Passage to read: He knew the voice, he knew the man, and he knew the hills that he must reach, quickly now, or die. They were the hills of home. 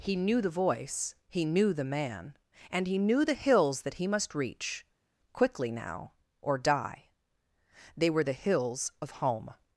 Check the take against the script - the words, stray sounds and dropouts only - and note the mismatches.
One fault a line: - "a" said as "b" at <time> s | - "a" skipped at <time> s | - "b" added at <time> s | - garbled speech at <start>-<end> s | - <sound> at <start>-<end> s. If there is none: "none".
none